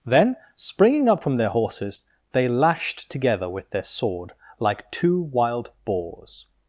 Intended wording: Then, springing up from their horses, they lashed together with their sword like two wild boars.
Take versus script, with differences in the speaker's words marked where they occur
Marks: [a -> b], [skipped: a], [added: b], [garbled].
Then, springing up from their horses, they lashed together with their sword like two wild boars.